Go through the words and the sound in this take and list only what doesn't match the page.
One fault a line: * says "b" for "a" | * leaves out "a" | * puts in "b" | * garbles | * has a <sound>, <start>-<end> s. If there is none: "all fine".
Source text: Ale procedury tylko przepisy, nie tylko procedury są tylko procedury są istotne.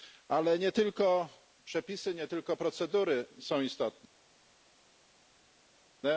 * says "nie" for "procedury"
* leaves out "tylko procedury są"